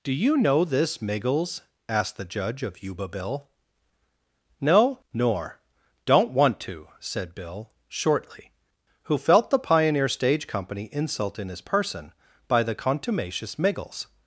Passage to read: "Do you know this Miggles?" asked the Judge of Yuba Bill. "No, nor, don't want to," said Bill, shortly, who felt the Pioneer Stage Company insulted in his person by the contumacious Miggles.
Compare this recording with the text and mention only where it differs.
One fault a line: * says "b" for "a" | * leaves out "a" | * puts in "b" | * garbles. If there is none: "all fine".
* says "insult" for "insulted"